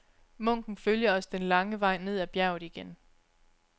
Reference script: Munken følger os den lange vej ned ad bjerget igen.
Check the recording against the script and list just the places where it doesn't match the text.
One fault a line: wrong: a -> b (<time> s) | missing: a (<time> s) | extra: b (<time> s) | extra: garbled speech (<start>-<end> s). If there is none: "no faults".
no faults